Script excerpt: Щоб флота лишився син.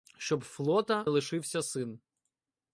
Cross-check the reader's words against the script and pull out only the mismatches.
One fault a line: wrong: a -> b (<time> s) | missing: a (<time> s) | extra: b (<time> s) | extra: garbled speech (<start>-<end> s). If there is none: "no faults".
no faults